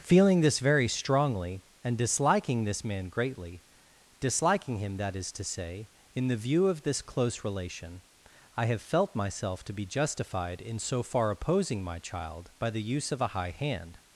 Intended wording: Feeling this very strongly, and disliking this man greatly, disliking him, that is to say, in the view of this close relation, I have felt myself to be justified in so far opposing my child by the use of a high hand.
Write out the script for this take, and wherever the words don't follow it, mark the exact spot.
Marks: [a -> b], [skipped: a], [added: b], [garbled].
Feeling this very strongly, and disliking this man greatly, disliking him, that is to say, in the view of this close relation, I have felt myself to be justified in so far opposing my child by the use of a high hand.